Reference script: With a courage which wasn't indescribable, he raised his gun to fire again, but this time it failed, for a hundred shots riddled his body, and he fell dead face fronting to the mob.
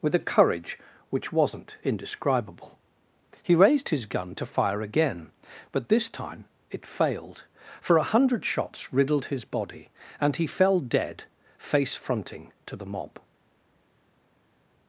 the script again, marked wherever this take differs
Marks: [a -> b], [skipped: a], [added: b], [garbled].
With a courage which wasn't indescribable, he raised his gun to fire again, but this time it failed, for a hundred shots riddled his body, and he fell dead face fronting to the mob.